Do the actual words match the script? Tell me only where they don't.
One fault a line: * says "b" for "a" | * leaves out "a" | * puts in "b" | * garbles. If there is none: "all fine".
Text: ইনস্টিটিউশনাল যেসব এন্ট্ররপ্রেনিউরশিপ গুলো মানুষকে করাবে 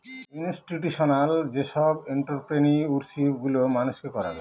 all fine